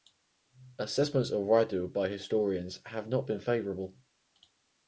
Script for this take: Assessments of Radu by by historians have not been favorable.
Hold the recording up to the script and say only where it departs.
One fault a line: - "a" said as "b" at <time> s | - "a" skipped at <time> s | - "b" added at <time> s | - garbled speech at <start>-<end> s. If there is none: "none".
- "by" skipped at 2.1 s